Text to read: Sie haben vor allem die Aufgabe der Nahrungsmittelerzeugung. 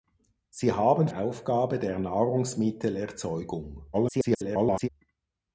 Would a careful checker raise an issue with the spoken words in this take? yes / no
yes